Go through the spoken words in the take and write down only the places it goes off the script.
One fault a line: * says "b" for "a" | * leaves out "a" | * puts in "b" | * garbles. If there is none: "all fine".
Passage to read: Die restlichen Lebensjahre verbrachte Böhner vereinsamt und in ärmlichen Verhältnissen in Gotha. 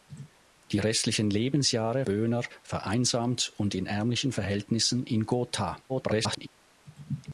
* leaves out "verbrachte"
* garbles